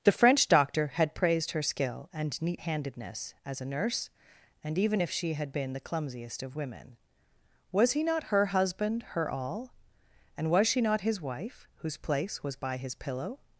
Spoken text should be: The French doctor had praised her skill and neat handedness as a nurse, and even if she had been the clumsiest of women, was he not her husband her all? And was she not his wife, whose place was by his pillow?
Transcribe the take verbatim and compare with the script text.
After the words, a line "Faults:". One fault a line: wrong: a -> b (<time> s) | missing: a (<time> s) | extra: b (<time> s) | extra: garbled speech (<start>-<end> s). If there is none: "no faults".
The French doctor had praised her skill and neat handedness as a nurse, and even if she had been the clumsiest of women, was he not her husband her all? And was she not his wife, whose place was by his pillow?
Faults:
no faults